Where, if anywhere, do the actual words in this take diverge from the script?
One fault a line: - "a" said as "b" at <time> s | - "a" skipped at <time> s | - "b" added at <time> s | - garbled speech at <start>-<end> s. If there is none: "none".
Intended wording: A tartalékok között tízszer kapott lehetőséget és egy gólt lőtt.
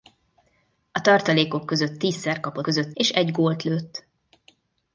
- "lehetőséget" said as "között" at 2.6 s